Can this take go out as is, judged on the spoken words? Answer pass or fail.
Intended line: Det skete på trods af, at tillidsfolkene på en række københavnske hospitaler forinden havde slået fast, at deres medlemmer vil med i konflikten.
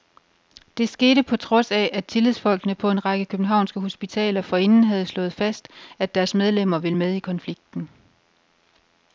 pass